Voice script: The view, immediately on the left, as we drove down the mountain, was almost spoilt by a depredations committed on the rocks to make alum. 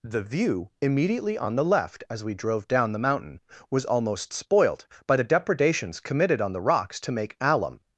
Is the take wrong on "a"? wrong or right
wrong